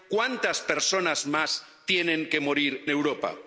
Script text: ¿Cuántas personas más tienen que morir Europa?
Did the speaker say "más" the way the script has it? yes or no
yes